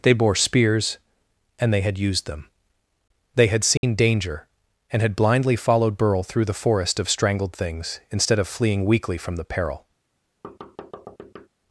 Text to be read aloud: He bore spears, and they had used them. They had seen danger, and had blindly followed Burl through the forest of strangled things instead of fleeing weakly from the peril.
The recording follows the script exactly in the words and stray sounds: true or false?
false